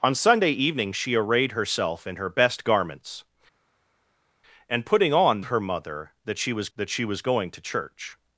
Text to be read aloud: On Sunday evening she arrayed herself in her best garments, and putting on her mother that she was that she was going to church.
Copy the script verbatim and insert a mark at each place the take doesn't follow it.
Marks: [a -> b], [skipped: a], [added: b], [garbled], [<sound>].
On Sunday evening she arrayed herself in her best garments, and putting on her mother that she was that she was going to church.